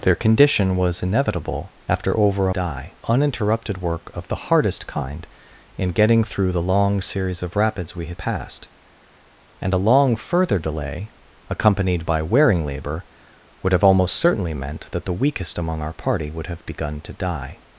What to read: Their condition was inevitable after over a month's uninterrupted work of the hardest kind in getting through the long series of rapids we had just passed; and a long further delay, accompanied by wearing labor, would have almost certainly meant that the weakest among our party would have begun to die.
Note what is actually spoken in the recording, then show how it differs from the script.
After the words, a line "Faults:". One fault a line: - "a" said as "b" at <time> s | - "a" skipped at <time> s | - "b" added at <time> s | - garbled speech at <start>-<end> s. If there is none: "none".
Their condition was inevitable after over a die uninterrupted work of the hardest kind in getting through the long series of rapids we had passed; and a long further delay, accompanied by wearing labor, would have almost certainly meant that the weakest among our party would have begun to die.
Faults:
- "month's" said as "die" at 2.5 s
- "just" skipped at 8.2 s